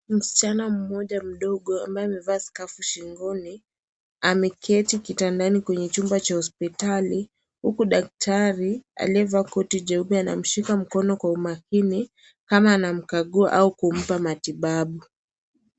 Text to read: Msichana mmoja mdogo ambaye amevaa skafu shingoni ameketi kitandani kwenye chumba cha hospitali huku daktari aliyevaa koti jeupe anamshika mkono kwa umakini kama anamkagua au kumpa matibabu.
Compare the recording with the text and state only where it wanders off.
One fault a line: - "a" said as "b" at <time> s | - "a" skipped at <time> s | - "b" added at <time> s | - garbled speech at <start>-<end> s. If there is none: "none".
none